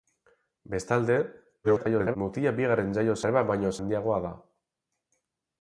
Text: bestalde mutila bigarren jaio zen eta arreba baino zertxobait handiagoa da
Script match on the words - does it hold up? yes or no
no